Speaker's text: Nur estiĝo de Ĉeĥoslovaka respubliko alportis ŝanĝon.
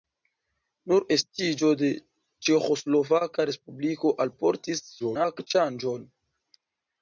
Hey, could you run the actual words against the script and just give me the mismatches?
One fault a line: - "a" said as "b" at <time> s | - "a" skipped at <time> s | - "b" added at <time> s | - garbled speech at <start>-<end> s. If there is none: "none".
- garbled speech at 5.0-5.5 s